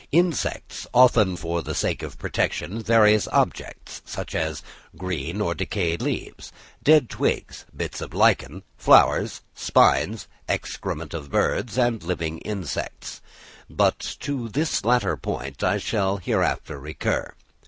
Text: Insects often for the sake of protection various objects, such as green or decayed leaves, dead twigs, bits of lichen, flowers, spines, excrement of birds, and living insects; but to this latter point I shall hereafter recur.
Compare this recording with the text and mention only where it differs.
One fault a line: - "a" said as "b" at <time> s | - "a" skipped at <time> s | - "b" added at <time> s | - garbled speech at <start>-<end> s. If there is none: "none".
none